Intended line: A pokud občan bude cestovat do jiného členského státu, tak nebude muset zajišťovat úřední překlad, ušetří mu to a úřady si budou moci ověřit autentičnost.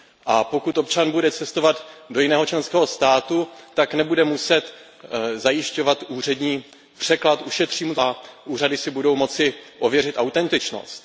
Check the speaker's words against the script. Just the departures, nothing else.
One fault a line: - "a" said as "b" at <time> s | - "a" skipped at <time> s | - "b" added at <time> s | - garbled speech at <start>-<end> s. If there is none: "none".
none